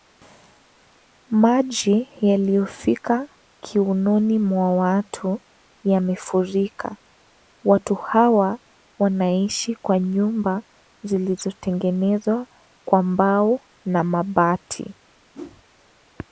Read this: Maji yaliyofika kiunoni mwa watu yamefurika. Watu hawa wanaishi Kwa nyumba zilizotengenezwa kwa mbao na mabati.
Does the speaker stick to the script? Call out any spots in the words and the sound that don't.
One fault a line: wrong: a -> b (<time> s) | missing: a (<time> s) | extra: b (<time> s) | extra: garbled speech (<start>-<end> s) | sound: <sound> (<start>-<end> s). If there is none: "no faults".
sound: whoosh (15.3-15.6 s)